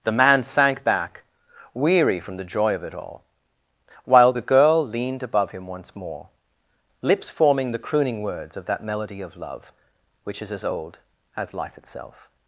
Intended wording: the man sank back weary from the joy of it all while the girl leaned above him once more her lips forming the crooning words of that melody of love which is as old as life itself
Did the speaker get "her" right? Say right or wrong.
wrong